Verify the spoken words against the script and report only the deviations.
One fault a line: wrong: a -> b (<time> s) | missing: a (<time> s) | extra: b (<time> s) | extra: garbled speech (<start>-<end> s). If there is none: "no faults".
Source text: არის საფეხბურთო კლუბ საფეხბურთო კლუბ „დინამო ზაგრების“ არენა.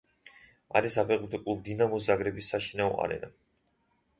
missing: საფეხბურთო კლუბ (1.6 s)
extra: საშინაო (2.5 s)